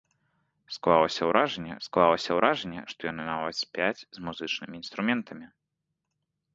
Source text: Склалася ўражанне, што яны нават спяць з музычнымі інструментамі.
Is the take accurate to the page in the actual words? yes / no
no